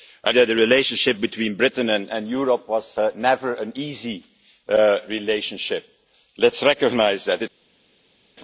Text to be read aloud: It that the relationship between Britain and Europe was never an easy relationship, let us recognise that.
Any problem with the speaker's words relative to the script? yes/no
no